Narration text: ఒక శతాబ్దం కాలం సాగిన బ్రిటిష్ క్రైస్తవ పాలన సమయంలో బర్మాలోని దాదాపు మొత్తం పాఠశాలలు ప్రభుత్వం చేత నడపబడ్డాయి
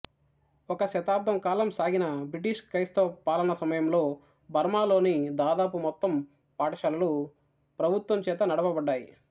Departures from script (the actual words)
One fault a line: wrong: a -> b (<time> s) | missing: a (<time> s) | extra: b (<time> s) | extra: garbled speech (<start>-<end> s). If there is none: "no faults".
no faults